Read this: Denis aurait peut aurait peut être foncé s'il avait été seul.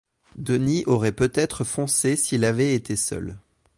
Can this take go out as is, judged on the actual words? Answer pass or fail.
fail